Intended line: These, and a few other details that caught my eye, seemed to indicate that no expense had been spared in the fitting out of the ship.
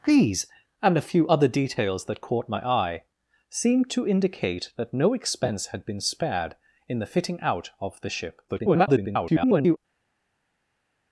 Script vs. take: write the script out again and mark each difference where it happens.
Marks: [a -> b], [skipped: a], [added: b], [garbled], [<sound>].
These, and a few other details that caught my eye, seemed to indicate that no expense had been spared in the fitting out of the ship. [garbled]